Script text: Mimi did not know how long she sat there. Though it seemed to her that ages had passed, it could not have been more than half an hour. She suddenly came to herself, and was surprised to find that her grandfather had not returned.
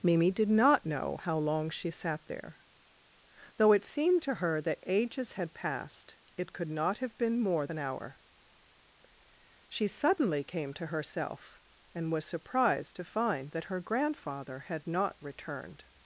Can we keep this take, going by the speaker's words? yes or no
no